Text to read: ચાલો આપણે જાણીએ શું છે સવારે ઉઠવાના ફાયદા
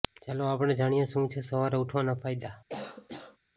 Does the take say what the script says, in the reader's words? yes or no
yes